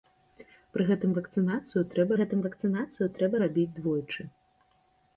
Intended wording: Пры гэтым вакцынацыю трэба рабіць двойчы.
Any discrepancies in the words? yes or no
yes